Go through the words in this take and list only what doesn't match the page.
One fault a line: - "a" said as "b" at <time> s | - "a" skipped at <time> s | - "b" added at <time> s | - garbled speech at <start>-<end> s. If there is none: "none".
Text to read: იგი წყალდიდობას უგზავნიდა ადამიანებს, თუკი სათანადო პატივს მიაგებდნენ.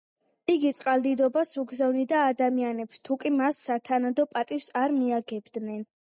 - "მას" added at 3.4 s
- "არ" added at 4.8 s